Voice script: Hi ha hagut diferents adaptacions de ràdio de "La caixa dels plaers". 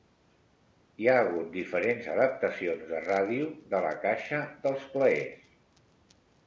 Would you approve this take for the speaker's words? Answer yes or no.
yes